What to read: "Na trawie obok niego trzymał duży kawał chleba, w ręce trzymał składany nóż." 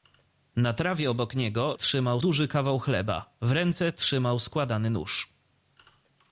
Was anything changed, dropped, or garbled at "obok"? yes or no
no